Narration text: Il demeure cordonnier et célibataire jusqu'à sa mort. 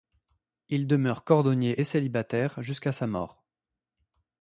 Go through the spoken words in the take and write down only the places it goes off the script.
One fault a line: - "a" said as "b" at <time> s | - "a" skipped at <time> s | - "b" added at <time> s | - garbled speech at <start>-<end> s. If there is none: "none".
none